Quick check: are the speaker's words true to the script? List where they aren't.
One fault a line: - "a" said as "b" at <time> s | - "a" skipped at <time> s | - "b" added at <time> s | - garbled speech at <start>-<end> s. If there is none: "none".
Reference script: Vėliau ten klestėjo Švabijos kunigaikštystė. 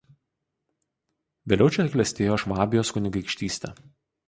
- "ten" said as "čia" at 1.7 s